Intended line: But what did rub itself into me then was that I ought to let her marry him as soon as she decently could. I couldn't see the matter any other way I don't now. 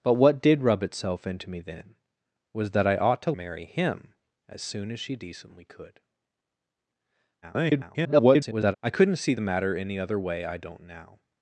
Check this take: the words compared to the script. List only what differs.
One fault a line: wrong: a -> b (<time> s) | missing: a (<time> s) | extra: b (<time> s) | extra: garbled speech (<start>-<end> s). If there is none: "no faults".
missing: let her (3.3 s)
extra: garbled speech (7.4-8.7 s)